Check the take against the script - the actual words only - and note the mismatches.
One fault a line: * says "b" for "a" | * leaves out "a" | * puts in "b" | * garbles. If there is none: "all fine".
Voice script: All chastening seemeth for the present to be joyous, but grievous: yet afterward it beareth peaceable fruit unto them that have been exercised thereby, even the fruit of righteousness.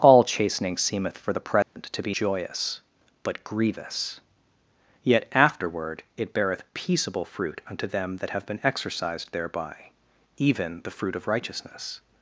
all fine